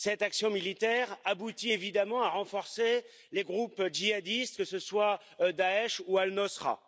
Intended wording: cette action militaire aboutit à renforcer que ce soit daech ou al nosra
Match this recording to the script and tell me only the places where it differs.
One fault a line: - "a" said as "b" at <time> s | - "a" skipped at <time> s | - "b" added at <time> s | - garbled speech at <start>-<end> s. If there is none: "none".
- "évidemment" added at 1.7 s
- "les groupes djihadistes" added at 3.3 s